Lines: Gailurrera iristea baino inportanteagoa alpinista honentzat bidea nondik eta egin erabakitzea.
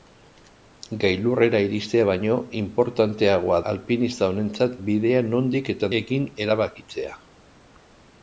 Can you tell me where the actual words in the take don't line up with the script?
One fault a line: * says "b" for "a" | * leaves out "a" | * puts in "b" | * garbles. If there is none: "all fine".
all fine